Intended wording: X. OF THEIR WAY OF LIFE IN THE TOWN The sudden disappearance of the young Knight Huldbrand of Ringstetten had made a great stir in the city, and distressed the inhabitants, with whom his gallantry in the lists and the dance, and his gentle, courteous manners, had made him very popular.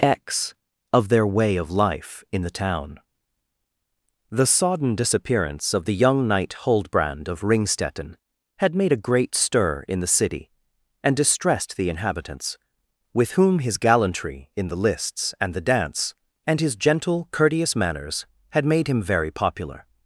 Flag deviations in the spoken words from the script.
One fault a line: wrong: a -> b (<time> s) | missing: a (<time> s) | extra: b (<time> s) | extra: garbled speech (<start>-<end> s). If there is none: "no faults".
wrong: sudden -> sodden (4.5 s)